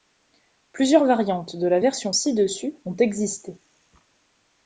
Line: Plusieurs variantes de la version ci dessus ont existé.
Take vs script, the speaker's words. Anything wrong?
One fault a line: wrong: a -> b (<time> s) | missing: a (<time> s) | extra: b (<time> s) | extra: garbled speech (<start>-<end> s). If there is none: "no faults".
no faults